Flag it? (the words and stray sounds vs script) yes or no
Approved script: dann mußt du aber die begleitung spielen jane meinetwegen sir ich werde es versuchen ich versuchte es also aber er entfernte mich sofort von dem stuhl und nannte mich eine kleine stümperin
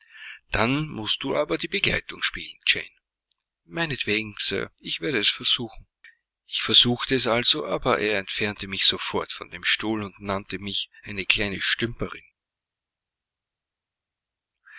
no